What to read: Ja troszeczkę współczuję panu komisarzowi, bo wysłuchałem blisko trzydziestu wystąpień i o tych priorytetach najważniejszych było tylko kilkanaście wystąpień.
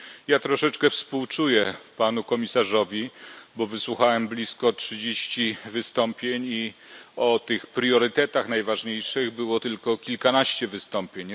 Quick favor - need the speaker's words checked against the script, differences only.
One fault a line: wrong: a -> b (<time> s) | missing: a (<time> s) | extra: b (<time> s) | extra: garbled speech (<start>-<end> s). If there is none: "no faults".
no faults